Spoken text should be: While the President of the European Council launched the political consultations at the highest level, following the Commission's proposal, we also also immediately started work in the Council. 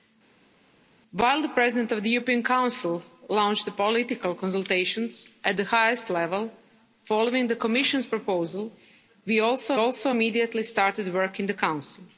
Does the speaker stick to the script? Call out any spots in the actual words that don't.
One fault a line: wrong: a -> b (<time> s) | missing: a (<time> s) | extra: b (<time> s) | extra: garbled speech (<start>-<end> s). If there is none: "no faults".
no faults